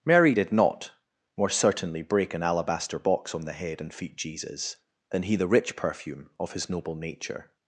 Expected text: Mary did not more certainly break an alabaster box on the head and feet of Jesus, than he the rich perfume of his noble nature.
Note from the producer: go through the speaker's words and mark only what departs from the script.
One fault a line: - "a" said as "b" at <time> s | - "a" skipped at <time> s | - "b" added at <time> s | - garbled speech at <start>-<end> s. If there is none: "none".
- "of" skipped at 4.2 s